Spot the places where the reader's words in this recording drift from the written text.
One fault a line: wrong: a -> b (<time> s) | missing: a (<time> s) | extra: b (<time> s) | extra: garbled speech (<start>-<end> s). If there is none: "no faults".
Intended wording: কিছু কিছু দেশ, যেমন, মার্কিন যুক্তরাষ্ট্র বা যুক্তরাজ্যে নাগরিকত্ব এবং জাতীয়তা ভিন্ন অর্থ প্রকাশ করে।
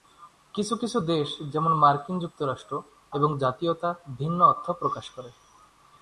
missing: বা যুক্তরাজ্যে নাগরিকত্ব (2.7 s)